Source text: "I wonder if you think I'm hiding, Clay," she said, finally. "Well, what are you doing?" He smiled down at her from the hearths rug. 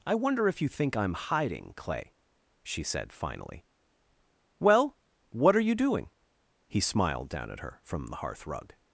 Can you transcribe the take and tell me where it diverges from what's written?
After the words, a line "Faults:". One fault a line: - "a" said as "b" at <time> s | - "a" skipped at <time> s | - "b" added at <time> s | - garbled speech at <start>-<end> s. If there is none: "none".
"I wonder if you think I'm hiding, Clay," she said, finally. "Well, what are you doing?" He smiled down at her from the hearth rug.
Faults:
- "hearths" said as "hearth" at 8.2 s